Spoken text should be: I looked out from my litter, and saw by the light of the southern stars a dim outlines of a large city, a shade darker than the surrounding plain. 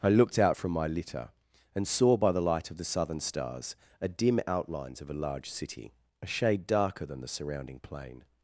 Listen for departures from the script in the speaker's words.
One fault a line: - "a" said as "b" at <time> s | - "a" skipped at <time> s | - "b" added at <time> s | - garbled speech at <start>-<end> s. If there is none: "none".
none